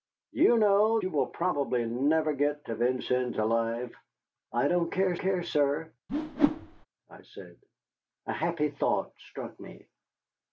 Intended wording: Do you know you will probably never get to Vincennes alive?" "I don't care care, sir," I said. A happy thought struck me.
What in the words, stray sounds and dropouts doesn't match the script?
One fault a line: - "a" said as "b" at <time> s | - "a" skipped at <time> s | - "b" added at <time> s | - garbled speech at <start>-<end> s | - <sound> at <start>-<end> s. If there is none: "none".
- whoosh at 6.1-6.9 s